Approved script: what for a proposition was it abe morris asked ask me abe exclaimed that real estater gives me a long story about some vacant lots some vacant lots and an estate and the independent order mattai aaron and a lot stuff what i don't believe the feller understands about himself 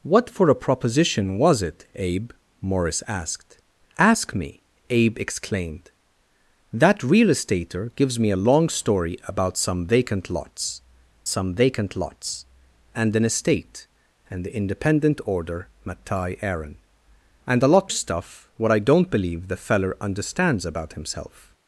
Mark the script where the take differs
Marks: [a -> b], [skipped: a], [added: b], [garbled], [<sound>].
what for a proposition was it abe morris asked ask me abe exclaimed that real estater gives me a long story about some vacant lots some vacant lots and an estate and the independent order mattai aaron and a lot stuff what i don't believe the feller understands about himself